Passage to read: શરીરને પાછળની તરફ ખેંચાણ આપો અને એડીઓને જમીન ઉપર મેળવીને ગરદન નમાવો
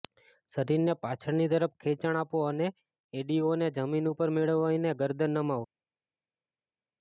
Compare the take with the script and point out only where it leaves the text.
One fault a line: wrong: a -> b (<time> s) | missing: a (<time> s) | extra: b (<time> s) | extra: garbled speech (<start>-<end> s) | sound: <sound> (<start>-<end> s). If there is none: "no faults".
no faults